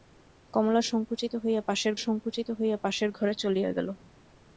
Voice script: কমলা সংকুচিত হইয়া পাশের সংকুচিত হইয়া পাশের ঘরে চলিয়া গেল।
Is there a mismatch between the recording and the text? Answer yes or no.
no